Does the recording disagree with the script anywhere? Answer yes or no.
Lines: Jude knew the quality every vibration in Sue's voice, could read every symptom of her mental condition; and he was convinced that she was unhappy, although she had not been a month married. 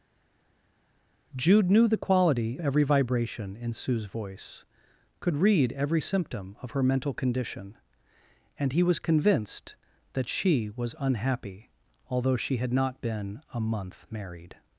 no